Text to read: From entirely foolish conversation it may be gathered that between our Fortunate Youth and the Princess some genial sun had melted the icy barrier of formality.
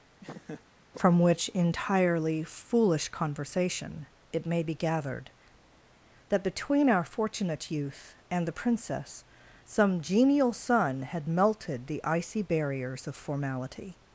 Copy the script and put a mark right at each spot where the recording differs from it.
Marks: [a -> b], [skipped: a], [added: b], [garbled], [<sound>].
[laugh] From [added: which] entirely foolish conversation it may be gathered that between our Fortunate Youth and the Princess some genial sun had melted the icy [barrier -> barriers] of formality.